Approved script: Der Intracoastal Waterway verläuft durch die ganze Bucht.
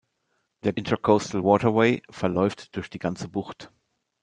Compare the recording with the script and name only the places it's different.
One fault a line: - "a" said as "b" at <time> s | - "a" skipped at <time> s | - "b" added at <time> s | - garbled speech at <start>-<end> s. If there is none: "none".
none